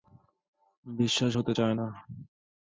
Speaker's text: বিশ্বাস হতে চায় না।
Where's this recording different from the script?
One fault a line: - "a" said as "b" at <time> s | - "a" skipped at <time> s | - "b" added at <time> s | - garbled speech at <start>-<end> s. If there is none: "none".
none